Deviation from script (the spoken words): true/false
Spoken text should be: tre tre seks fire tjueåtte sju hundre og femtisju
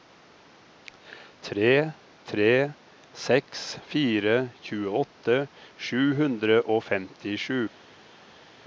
false